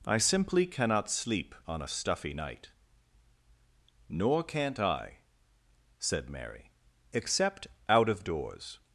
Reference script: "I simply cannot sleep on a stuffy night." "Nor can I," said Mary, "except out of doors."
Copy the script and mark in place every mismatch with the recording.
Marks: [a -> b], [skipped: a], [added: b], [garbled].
"I simply cannot sleep on a stuffy night." "Nor [can -> can't] I," said Mary, "except out of doors."